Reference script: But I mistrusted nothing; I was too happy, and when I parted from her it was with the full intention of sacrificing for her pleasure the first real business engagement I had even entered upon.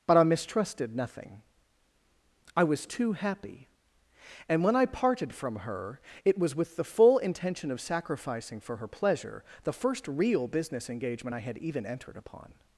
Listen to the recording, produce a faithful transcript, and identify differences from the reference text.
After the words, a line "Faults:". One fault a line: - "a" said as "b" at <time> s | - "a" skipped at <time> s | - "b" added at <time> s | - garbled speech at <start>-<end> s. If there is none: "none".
But I mistrusted nothing; I was too happy, and when I parted from her it was with the full intention of sacrificing for her pleasure the first real business engagement I had even entered upon.
Faults:
none